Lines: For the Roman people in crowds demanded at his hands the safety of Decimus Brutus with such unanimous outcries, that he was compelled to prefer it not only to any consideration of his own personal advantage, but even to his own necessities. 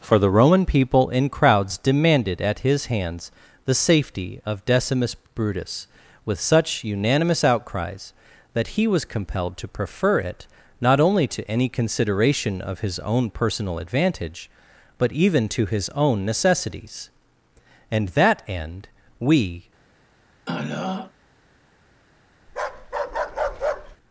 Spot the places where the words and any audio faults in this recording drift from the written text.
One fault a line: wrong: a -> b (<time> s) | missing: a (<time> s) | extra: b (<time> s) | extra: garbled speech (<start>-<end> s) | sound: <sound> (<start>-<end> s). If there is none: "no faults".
extra: And that end we (17.9 s)
sound: throat clearing (20.5-21.1 s)
sound: bark (22.5-24.0 s)